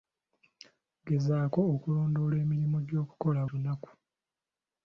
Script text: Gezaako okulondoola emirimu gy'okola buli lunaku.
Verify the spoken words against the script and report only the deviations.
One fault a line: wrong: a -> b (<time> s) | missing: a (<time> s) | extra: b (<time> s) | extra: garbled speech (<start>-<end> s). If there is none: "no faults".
missing: buli (3.4 s)